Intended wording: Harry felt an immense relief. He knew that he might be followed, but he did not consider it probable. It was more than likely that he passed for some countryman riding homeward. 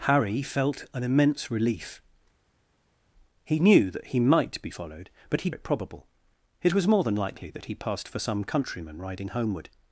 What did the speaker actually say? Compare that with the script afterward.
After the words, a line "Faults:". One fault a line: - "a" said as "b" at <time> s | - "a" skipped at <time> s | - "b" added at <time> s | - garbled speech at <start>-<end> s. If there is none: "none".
Harry felt an immense relief. He knew that he might be followed, but he it probable. It was more than likely that he passed for some countryman riding homeward.
Faults:
- "did not consider" skipped at 5.5 s